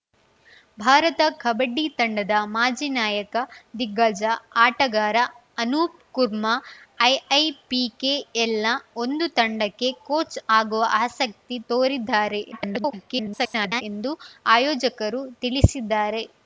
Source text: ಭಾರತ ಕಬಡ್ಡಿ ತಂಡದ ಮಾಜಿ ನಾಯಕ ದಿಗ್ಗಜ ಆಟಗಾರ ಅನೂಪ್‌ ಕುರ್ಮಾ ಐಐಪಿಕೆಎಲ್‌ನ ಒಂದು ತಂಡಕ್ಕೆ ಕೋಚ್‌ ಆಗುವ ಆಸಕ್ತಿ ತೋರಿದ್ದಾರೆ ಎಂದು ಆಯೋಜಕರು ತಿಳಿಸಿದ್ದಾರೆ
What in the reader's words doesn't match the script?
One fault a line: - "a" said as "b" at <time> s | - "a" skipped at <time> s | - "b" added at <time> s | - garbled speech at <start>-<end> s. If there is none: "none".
- garbled speech at 12.5-13.8 s